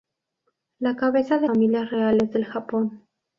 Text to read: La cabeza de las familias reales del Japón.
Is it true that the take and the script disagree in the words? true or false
true